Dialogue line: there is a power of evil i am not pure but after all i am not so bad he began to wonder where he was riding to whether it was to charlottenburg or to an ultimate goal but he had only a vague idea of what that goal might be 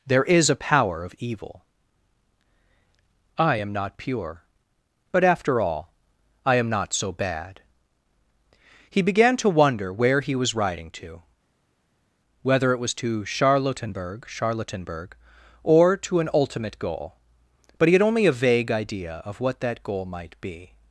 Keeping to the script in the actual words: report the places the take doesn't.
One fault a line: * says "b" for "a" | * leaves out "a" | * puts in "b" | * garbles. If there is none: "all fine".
* puts in "charlottenburg"